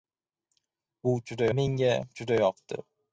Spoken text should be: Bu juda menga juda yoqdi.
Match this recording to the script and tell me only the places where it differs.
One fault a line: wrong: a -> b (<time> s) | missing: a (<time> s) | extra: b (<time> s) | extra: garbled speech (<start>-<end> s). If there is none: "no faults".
no faults